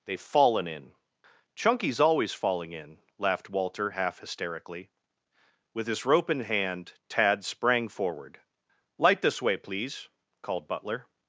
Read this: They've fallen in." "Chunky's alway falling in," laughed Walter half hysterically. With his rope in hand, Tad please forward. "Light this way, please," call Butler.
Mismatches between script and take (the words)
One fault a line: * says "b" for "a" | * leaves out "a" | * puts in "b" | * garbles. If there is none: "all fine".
* says "always" for "alway"
* says "sprang" for "please"
* says "called" for "call"